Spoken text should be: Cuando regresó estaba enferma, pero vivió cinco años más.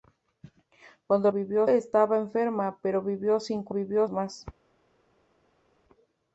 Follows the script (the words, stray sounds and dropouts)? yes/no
no